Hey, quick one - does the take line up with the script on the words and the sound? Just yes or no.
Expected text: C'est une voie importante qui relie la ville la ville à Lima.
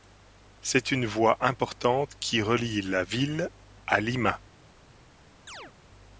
no